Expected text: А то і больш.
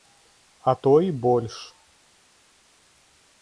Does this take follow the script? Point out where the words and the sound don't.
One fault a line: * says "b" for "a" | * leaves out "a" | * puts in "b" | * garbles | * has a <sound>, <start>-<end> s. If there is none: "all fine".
all fine